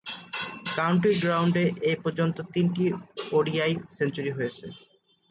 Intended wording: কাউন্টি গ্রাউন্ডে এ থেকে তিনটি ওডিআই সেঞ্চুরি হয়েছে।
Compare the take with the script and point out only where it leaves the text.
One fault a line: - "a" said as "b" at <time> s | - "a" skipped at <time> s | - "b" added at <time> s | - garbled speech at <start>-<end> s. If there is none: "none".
- "থেকে" said as "পর্যন্ত" at 2.0 s